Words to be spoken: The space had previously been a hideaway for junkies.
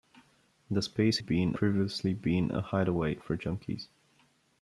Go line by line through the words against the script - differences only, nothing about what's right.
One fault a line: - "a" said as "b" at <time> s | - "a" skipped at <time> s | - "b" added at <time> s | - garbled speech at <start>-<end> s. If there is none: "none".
- "had" said as "been" at 1.2 s